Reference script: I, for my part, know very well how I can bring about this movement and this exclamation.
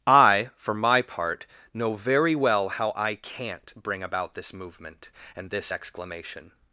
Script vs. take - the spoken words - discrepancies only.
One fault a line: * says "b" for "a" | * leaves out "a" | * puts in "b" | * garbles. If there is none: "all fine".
* says "can't" for "can"